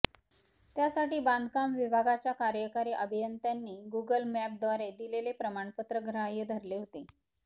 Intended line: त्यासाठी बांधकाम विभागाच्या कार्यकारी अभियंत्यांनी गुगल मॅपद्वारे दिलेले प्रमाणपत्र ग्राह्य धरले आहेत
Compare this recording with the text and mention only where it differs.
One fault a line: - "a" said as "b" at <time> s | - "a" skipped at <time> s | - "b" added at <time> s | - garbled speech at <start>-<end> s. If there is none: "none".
- "आहेत" said as "होते" at 6.8 s